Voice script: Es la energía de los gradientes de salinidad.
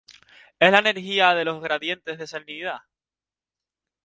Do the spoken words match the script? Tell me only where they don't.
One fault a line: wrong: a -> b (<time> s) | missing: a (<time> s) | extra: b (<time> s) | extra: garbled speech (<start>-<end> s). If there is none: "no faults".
no faults